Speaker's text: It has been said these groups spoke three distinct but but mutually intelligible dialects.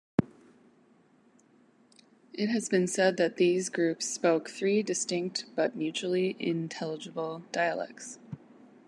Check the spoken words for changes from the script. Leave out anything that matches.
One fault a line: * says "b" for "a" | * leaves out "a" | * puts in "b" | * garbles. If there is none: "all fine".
* puts in "that"
* leaves out "but"